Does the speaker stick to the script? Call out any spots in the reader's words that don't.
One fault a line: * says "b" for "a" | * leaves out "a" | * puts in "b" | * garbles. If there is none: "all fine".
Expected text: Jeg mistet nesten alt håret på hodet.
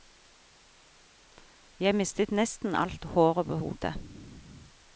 all fine